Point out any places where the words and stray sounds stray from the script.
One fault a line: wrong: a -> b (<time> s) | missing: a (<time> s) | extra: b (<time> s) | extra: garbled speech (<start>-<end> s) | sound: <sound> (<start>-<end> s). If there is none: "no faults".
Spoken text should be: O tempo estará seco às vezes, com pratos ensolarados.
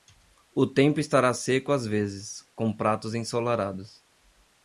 no faults